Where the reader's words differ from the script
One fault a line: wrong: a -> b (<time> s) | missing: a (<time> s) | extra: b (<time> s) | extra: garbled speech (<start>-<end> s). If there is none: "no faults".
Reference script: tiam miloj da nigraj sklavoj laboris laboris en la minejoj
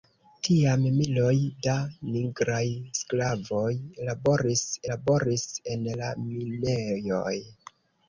no faults